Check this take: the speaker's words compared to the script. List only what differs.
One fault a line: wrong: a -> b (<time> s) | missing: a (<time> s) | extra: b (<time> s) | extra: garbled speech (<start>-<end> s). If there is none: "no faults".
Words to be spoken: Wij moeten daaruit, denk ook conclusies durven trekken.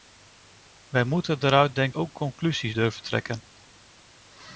no faults